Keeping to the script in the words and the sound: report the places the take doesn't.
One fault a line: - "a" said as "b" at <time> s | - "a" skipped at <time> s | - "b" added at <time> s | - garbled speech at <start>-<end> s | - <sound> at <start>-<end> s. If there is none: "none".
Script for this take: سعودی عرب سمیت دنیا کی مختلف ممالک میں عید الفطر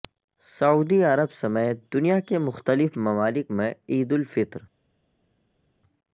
- "کی" said as "کے" at 2.2 s